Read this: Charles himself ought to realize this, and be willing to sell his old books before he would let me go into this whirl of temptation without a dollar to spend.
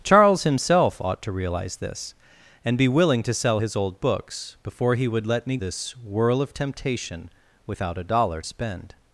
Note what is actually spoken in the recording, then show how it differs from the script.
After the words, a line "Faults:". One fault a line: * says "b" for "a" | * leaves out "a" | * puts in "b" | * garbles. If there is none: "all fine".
Charles himself ought to realize this, and be willing to sell his old books before he would let me this whirl of temptation without a dollar spend.
Faults:
* leaves out "go into"
* leaves out "to"